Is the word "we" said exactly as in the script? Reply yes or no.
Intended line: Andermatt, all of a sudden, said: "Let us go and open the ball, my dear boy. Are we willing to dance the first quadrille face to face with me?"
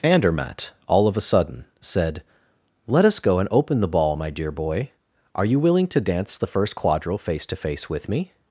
no